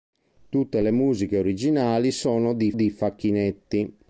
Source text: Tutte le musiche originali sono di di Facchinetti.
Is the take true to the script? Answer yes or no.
yes